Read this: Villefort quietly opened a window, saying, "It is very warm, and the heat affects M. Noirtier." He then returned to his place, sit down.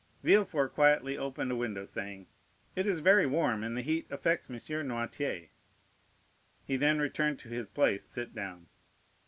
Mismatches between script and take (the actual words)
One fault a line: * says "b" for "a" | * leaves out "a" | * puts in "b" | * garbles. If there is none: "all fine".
all fine